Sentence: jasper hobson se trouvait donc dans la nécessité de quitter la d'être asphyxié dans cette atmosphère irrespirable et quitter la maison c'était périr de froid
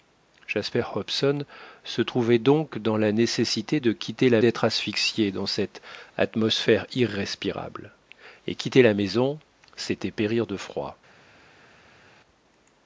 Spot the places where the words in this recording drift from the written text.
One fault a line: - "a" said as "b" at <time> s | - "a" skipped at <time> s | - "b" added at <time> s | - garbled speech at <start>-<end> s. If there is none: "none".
none